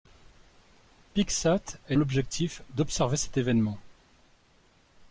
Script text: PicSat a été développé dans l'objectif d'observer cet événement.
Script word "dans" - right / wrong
wrong